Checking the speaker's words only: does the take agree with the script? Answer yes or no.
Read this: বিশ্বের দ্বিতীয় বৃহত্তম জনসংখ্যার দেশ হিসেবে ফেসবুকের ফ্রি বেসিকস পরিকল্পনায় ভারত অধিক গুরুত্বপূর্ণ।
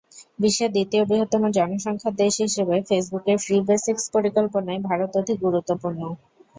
yes